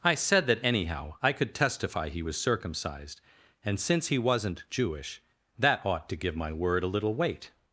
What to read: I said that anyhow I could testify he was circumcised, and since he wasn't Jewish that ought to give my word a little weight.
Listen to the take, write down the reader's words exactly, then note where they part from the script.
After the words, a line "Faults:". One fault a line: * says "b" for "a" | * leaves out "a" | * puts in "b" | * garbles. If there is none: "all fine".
I said that anyhow I could testify he was circumcised, and since he wasn't Jewish that ought to give my word a little weight.
Faults:
all fine